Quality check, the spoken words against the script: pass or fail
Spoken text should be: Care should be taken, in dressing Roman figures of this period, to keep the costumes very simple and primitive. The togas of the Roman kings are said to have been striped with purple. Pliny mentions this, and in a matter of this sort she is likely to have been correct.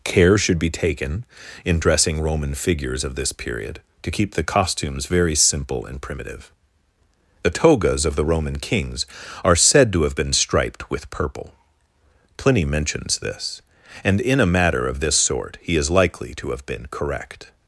fail